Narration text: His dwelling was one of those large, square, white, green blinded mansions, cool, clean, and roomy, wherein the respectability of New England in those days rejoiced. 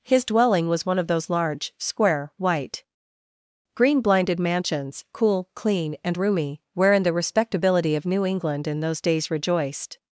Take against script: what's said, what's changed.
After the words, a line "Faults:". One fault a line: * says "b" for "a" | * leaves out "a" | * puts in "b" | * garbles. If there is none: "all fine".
His dwelling was one of those large, square, white, green blinded mansions, cool, clean, and roomy, wherein the respectability of New England in those days rejoiced.
Faults:
all fine